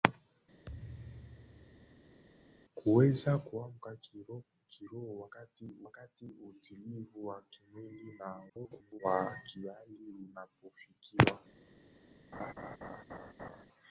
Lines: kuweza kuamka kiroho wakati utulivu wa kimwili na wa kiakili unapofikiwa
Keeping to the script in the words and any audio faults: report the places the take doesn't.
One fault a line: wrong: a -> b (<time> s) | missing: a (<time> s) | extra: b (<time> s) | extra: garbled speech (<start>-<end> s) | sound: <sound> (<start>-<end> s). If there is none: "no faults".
sound: thud (0.7-2.2 s)
extra: wakati (5.8 s)
extra: garbled speech (8.5-9.0 s)
sound: laugh (12.3-13.7 s)